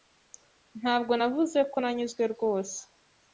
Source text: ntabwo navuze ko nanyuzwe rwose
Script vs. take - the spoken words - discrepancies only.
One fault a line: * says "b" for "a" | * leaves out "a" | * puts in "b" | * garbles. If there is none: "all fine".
all fine